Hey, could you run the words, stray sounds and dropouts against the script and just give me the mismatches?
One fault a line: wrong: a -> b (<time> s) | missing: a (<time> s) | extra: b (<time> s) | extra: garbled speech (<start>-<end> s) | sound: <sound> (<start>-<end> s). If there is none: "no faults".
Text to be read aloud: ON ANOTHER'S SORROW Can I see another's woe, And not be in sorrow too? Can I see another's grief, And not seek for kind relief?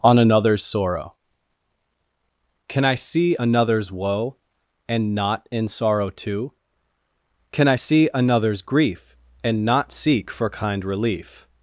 missing: be (5.4 s)